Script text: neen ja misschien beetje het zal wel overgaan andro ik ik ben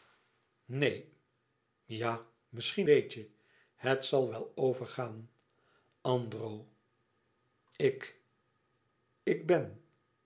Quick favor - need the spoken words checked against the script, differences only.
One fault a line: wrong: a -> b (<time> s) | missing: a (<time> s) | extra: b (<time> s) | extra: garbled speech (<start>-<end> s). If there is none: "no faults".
no faults